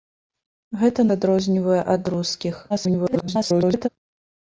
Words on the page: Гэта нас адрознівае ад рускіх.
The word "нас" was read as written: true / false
false